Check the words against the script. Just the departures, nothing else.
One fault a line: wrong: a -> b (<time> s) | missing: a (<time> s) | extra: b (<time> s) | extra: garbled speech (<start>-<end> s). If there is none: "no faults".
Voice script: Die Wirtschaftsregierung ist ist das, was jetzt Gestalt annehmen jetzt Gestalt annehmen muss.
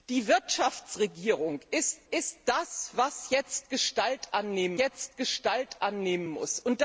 no faults